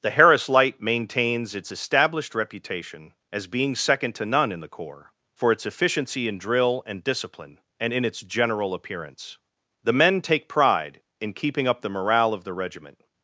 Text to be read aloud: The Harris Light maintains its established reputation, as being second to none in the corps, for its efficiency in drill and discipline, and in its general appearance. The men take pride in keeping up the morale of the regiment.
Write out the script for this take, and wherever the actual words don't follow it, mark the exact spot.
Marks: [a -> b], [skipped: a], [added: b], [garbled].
The Harris Light maintains its established reputation, as being second to none in the corps, for its efficiency in drill and discipline, and in its general appearance. The men take pride in keeping up the morale of the regiment.